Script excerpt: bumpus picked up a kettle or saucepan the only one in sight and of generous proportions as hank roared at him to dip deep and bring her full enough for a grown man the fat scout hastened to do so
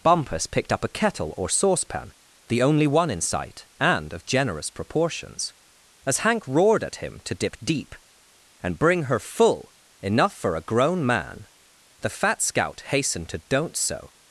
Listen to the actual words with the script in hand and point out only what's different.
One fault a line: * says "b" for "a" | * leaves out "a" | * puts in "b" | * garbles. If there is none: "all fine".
* says "don't" for "do"